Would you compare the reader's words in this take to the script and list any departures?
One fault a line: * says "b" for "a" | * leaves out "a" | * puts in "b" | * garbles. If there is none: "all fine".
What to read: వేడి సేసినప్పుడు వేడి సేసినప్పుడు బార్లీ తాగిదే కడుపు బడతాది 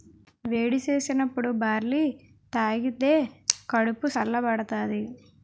* leaves out "వేడి సేసినప్పుడు"
* puts in "సల్ల"